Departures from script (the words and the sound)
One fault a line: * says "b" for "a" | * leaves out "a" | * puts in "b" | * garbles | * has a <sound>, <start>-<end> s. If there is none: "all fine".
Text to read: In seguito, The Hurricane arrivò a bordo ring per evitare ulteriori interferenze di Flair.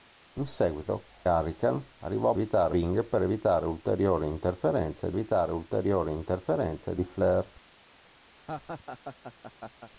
* leaves out "The"
* says "evitare" for "bordo"
* puts in "evitare ulteriori interferenze"
* has a laugh, 8.4-9.9 s